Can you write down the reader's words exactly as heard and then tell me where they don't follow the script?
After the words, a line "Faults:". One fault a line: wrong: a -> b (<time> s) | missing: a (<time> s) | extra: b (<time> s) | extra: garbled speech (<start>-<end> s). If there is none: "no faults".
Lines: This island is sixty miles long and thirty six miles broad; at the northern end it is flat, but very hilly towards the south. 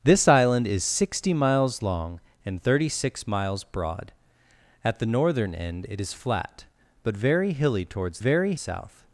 This island is sixty miles long and thirty six miles broad; at the northern end it is flat, but very hilly towards very south.
Faults:
wrong: the -> very (8.2 s)